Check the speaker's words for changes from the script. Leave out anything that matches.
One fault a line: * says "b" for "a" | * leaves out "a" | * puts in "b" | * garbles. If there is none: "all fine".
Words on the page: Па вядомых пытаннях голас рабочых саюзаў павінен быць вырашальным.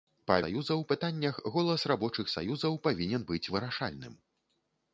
* says "саюзаў" for "вядомых"